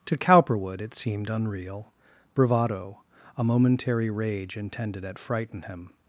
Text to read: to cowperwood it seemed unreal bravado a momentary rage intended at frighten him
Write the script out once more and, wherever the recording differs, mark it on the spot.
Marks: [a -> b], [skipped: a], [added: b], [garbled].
to cowperwood it seemed unreal bravado a momentary rage intended at frighten him